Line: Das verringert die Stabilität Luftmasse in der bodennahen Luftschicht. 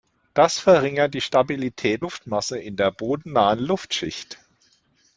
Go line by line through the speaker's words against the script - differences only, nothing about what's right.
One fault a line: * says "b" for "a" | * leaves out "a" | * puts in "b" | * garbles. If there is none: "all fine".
all fine